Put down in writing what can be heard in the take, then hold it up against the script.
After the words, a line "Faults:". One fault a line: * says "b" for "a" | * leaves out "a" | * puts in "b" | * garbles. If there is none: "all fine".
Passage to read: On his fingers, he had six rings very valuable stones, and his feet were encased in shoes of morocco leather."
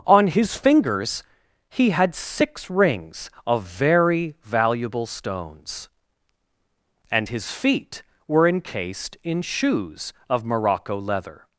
On his fingers, he had six rings of very valuable stones, and his feet were encased in shoes of morocco leather."
Faults:
* puts in "of"